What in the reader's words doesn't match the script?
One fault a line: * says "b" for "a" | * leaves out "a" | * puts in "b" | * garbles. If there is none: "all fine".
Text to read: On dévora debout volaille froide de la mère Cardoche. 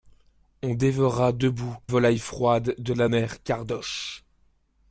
all fine